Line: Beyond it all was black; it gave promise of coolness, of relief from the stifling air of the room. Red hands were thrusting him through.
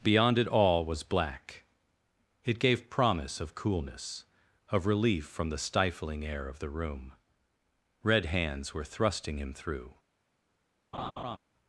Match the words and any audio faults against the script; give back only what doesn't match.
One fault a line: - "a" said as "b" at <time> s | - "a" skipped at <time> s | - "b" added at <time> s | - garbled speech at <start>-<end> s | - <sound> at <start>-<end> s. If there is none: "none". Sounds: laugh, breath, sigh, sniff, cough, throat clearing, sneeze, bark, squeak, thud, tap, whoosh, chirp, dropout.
- laugh at 10.9-11.4 s